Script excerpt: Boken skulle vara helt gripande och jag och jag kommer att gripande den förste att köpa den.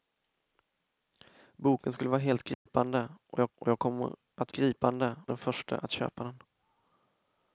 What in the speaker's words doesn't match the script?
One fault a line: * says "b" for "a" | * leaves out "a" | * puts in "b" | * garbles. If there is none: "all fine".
all fine